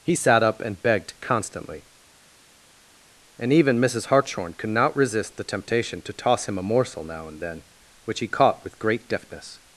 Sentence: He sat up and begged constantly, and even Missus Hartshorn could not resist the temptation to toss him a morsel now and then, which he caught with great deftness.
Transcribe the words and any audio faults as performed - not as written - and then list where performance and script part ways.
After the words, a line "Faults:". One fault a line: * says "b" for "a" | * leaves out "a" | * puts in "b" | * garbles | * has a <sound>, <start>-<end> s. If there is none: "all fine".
He sat up and begged constantly, and even Missus Hartshorn could not resist the temptation to toss him a morsel now and then, which he caught with great deftness.
Faults:
all fine